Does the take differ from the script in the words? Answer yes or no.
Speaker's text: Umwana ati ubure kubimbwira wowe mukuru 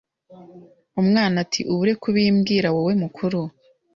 no